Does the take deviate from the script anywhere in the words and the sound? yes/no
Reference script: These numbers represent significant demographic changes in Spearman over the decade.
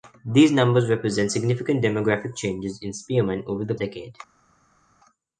no